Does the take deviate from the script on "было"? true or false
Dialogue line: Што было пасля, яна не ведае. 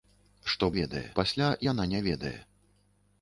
true